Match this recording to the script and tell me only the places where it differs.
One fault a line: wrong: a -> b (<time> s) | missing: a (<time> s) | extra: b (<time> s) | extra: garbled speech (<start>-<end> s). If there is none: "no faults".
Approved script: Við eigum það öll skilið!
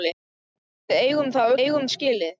wrong: öll -> eigum (1.6 s)